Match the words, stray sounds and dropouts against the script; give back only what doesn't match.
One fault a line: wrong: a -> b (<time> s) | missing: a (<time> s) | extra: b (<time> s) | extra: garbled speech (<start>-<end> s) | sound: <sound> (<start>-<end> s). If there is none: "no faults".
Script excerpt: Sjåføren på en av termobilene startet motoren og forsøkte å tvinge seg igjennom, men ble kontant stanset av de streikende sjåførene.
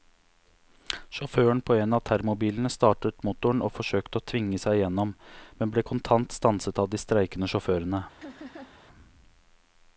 sound: laugh (8.2-8.8 s)